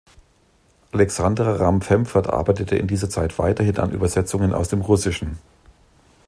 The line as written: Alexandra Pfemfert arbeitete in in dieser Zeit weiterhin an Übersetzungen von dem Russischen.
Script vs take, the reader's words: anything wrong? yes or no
yes